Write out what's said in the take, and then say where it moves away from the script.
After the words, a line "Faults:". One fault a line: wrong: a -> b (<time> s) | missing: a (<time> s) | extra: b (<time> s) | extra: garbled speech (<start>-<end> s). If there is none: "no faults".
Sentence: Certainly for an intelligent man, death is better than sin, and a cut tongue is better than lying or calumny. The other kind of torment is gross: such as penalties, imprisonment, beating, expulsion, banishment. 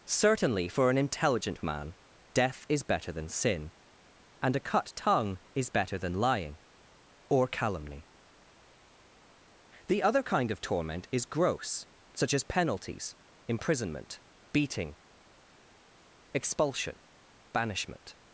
Certainly for an intelligent man, death is better than sin, and a cut tongue is better than lying or calumny. The other kind of torment is gross: such as penalties, imprisonment, beating, expulsion, banishment.
Faults:
no faults